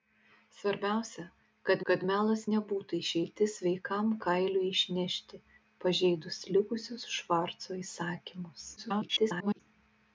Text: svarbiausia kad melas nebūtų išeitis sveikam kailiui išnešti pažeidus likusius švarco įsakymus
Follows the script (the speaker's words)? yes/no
no